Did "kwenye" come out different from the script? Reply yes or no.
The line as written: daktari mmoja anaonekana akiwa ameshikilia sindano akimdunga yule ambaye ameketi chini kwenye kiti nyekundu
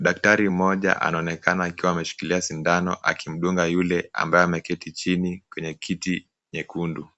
no